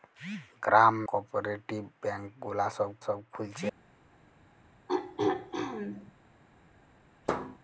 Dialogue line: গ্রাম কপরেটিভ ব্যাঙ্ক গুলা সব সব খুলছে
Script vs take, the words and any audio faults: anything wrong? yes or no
yes